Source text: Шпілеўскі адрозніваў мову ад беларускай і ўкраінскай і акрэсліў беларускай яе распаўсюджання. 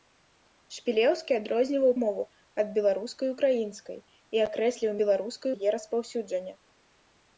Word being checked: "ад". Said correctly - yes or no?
yes